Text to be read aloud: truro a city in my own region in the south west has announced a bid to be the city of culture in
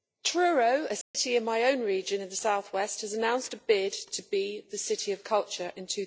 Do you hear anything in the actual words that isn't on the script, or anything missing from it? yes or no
no